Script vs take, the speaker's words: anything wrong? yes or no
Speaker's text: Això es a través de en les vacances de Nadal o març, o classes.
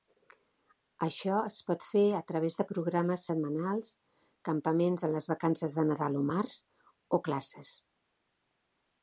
yes